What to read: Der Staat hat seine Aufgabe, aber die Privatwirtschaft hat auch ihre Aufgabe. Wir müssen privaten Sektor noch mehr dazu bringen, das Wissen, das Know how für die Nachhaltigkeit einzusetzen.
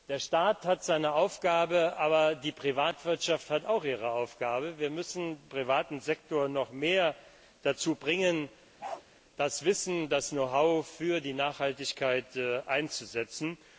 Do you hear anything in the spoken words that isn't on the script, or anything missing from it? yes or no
no